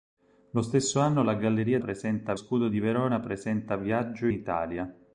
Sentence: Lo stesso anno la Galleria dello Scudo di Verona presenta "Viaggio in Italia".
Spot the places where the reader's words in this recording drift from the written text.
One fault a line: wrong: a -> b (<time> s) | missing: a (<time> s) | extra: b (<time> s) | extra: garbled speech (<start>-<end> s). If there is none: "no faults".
wrong: dello -> presenta (1.8 s)
missing: in (4.3 s)